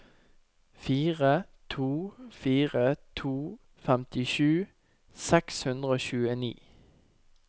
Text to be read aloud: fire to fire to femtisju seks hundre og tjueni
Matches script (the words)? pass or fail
pass